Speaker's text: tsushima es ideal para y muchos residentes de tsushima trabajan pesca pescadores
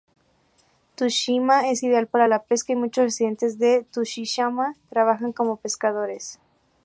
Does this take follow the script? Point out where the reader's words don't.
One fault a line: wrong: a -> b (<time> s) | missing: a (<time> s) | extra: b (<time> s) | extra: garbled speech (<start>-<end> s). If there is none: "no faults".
extra: la pesca (2.2 s)
wrong: pesca -> como (5.3 s)